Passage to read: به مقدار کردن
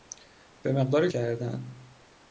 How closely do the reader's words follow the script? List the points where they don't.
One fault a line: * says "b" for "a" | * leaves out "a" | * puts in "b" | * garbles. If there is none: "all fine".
all fine